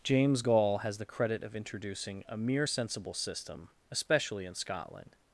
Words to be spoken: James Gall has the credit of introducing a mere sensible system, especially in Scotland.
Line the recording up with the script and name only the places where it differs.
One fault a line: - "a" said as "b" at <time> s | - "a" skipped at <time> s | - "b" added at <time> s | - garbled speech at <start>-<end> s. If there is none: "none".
none